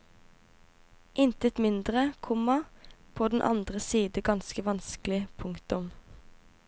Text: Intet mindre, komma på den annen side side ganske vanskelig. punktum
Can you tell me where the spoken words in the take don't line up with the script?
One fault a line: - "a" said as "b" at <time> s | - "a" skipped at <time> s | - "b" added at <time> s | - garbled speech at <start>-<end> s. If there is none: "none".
- "side" skipped at 4.2 s